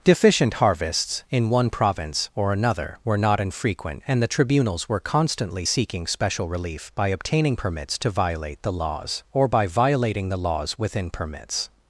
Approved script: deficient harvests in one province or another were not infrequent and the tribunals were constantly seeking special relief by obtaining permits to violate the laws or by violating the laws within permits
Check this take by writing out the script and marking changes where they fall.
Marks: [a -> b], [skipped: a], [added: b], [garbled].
deficient harvests in one province or another were not infrequent and the tribunals were constantly seeking special relief by obtaining permits to violate the laws or by violating the laws within permits